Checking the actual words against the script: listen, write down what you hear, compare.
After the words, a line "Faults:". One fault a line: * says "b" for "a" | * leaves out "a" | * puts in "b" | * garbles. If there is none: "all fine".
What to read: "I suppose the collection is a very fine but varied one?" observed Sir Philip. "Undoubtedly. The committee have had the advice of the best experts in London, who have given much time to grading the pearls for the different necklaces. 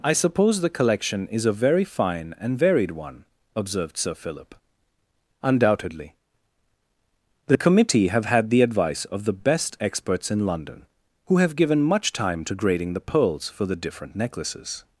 "I suppose the collection is a very fine and varied one?" observed Sir Philip. "Undoubtedly. The committee have had the advice of the best experts in London, who have given much time to grading the pearls for the different necklaces.
Faults:
* says "and" for "but"